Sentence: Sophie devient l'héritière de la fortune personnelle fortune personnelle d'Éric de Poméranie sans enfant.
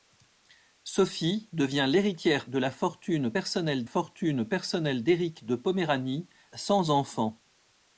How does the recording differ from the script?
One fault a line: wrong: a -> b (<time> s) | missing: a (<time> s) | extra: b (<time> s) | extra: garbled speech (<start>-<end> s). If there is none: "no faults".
no faults